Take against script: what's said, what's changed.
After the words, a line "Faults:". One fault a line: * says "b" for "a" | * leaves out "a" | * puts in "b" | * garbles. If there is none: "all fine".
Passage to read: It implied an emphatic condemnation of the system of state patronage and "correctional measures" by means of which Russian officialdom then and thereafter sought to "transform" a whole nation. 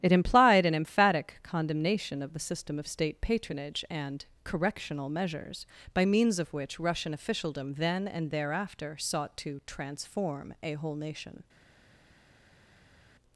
It implied an emphatic condemnation of the system of state patronage and "correctional measures" by means of which Russian officialdom then and thereafter sought to "transform" a whole nation.
Faults:
all fine